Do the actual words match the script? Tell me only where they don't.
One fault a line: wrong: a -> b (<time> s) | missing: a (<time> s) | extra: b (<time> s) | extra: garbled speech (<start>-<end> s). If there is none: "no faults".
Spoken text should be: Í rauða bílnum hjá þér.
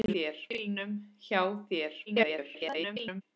wrong: rauða -> þér (0.2 s)
extra: garbled speech (2.1-3.2 s)